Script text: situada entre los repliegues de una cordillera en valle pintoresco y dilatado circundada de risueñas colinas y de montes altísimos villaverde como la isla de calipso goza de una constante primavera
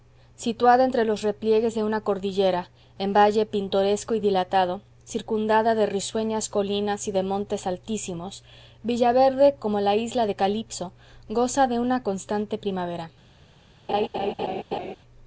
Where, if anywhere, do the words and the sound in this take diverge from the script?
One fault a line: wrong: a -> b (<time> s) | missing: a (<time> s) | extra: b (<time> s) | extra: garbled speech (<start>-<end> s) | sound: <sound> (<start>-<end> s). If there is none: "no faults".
sound: laugh (13.9-15.0 s)